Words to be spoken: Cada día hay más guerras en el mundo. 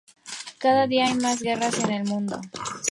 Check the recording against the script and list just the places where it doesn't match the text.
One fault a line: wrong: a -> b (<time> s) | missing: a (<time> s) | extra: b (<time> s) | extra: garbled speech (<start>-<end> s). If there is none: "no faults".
no faults